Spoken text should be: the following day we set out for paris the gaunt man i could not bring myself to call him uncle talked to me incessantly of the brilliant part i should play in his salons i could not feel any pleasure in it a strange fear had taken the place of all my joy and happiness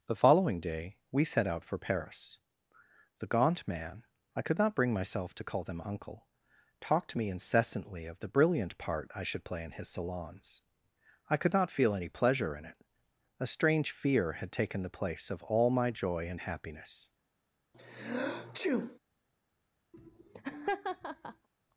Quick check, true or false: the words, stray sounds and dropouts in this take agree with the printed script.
false